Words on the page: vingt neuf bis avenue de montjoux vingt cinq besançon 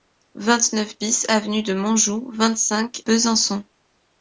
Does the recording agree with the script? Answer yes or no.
yes